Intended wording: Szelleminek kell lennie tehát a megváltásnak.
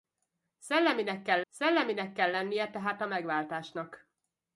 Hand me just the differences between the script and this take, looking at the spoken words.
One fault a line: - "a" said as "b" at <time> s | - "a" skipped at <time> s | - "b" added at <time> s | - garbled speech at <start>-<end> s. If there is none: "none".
- "szelleminek kell" added at 1.5 s